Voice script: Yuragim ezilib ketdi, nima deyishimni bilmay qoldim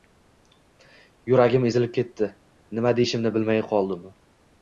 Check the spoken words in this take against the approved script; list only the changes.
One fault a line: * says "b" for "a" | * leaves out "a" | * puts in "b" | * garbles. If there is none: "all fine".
all fine